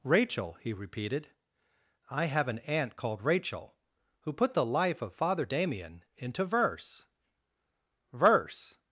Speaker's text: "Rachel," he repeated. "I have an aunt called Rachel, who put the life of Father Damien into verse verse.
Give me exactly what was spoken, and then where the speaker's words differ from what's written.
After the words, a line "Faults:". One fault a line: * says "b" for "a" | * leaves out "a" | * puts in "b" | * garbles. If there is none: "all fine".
"Rachel," he repeated. "I have an aunt called Rachel, who put the life of Father Damien into verse verse.
Faults:
all fine